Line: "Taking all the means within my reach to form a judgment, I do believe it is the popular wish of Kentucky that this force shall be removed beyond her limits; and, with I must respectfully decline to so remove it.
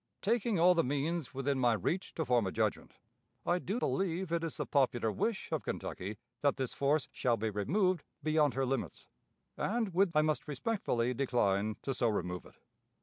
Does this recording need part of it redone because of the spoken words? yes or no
no